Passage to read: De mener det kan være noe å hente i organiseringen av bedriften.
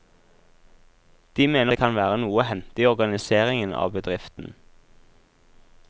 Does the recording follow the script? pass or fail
pass